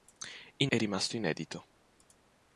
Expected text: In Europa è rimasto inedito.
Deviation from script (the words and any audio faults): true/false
true